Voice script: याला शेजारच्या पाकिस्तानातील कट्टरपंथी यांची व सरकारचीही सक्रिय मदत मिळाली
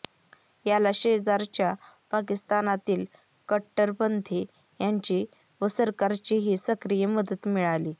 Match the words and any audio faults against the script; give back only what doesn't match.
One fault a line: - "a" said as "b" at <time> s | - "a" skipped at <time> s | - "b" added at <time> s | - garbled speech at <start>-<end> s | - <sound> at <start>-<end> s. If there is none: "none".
none